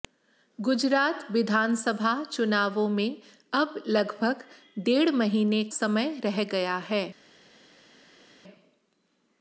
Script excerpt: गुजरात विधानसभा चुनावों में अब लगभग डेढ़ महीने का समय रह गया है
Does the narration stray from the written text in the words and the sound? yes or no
yes